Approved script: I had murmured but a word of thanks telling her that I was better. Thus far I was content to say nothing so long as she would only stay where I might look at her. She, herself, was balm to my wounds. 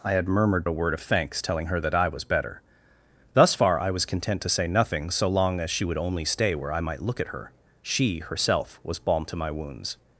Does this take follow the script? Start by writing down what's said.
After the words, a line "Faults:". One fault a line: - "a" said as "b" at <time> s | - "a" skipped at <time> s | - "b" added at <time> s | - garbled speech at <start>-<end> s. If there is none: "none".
I had murmured a word of thanks telling her that I was better. Thus far I was content to say nothing so long as she would only stay where I might look at her. She, herself, was balm to my wounds.
Faults:
- "but" skipped at 0.7 s